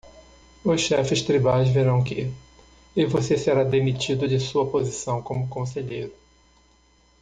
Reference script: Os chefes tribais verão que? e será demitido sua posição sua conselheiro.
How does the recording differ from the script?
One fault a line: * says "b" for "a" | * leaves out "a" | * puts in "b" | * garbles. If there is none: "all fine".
* puts in "você"
* puts in "de"
* says "como" for "sua"